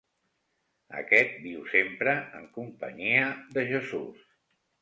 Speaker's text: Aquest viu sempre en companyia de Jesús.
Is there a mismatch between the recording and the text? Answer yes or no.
no